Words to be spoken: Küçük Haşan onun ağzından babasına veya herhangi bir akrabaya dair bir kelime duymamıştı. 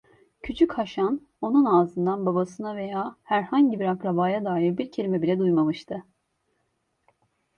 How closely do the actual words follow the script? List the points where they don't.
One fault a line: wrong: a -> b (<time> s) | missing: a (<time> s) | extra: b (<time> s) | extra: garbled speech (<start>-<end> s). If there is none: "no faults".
extra: bile (5.2 s)